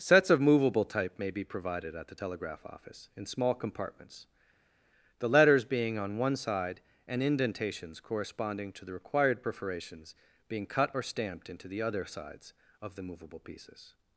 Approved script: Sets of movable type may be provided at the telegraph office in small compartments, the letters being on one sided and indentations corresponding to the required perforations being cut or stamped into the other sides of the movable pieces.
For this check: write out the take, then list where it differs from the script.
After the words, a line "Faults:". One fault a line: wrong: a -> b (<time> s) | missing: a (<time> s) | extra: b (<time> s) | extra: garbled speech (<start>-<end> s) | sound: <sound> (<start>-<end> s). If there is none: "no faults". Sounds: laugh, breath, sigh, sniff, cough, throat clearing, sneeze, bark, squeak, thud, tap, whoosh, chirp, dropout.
Sets of movable type may be provided at the telegraph office in small compartments, the letters being on one side and indentations corresponding to the required perforations being cut or stamped into the other sides of the movable pieces.
Faults:
wrong: sided -> side (6.3 s)